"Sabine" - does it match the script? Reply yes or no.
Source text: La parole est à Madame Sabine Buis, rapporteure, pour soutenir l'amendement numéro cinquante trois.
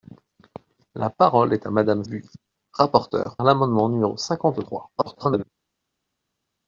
no